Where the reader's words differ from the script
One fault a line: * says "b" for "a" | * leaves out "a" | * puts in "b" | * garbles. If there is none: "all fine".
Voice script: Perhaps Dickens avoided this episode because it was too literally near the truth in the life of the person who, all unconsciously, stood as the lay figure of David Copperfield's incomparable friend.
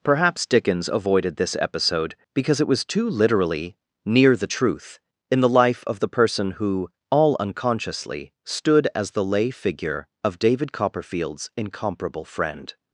all fine